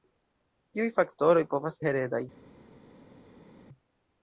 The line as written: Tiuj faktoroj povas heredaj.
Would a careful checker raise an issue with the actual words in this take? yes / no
no